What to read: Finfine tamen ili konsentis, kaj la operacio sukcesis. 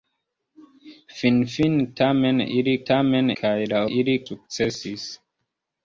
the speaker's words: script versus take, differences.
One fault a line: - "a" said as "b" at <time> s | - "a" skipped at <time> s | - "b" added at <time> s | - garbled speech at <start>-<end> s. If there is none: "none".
- "konsentis" said as "tamen" at 2.9 s
- "operacio" said as "ili" at 3.9 s